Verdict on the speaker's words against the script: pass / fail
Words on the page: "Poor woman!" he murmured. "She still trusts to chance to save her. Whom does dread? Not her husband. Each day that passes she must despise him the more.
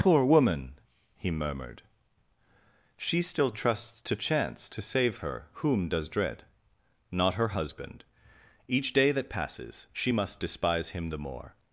pass